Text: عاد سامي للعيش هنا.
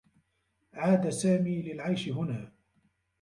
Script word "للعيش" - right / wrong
right